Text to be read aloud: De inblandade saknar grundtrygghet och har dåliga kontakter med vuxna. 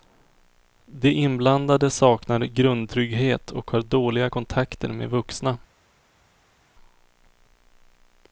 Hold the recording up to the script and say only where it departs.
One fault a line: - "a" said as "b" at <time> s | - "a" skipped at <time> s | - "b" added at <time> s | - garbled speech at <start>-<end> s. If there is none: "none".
none